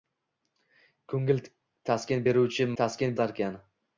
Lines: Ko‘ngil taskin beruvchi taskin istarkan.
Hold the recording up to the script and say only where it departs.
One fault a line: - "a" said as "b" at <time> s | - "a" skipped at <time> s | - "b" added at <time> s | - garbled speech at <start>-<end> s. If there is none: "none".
none